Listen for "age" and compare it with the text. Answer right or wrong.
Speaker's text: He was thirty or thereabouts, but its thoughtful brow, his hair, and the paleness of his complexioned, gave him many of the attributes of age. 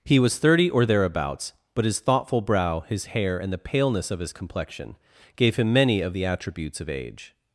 right